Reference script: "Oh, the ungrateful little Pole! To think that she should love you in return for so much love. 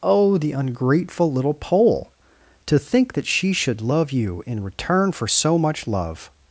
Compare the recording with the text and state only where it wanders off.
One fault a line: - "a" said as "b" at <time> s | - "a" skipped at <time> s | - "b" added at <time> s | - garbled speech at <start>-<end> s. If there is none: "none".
none